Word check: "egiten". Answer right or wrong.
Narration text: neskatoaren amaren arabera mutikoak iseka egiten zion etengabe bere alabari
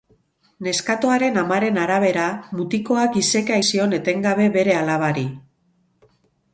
wrong